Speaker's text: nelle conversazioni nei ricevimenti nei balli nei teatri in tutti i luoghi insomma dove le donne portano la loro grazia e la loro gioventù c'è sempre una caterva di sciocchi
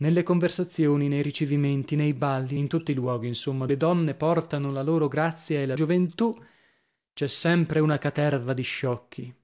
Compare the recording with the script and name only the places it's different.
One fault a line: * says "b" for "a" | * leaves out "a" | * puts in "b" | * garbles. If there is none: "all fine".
* leaves out "nei teatri"
* leaves out "dove"
* leaves out "loro"